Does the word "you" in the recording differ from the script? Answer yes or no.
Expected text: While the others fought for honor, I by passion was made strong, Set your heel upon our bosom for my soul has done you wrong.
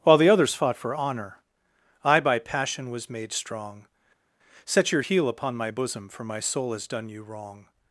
no